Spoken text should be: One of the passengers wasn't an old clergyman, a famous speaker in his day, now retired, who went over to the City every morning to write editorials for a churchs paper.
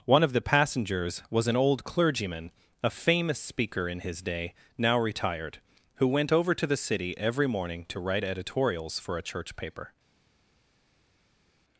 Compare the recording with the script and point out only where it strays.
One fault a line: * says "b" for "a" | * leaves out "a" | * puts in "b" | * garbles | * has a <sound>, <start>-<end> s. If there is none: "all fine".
* says "was" for "wasn't"
* says "church" for "churchs"